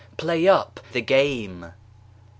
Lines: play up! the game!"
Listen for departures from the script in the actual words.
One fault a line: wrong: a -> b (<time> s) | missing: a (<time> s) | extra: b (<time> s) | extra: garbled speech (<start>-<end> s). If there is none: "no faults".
no faults